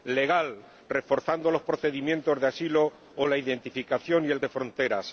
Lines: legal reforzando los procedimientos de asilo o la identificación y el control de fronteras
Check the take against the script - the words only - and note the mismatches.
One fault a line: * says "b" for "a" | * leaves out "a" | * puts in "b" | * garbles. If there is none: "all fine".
* leaves out "control"